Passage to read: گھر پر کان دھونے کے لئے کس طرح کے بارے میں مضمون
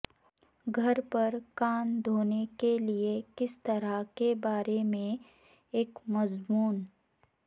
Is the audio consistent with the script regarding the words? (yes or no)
no